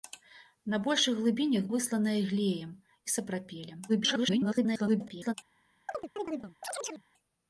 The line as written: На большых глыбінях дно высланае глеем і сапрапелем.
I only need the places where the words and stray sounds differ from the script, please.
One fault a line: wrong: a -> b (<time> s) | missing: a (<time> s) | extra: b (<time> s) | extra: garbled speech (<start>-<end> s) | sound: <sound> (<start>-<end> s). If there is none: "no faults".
missing: дно (1.7 s)
extra: garbled speech (3.9-5.3 s)
sound: chirp (5.9-7.0 s)